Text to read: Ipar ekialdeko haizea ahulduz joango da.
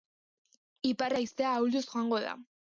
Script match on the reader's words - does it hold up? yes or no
no